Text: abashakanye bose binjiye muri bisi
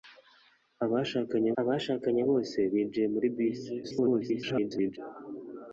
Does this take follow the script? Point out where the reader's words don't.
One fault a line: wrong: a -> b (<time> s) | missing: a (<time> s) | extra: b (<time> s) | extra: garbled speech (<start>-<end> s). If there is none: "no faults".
extra: abashakanye (1.6 s)
extra: garbled speech (3.8-5.0 s)